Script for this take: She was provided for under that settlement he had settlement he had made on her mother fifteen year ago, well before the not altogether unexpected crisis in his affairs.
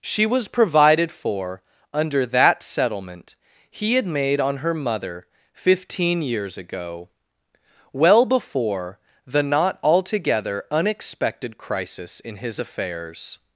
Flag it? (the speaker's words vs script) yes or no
yes